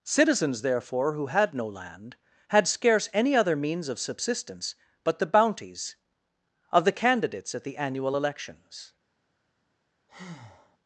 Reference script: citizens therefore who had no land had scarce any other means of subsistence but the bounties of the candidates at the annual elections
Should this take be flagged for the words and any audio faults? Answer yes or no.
yes